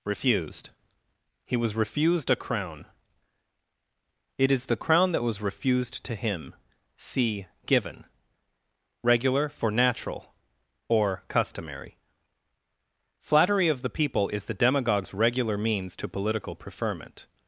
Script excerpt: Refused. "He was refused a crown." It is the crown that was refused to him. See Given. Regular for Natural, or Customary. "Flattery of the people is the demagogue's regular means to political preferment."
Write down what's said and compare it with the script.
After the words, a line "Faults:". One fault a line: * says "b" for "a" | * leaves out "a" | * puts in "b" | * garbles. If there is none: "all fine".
Refused. "He was refused a crown." It is the crown that was refused to him. See Given. Regular for Natural, or Customary. "Flattery of the people is the demagogue's regular means to political preferment."
Faults:
all fine